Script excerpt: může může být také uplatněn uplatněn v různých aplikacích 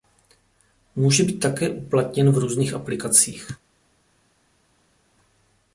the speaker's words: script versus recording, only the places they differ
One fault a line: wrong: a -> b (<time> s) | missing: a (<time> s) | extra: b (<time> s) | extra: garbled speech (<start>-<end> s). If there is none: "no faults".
missing: může (1.2 s)
missing: uplatněn (2.3 s)